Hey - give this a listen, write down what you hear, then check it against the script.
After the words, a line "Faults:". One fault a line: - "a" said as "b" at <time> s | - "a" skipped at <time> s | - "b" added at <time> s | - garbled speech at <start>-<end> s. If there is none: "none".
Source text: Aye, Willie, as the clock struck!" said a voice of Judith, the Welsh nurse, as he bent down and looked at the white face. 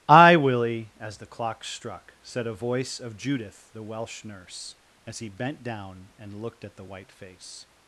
Aye, Willie, as the clock struck!" said a voice of Judith, the Welsh nurse, as he bent down and looked at the white face.
Faults:
none